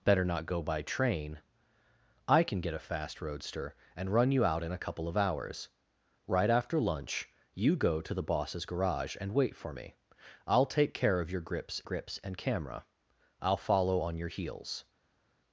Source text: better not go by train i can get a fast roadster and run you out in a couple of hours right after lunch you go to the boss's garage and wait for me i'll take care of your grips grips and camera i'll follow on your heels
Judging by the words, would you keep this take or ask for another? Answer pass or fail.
pass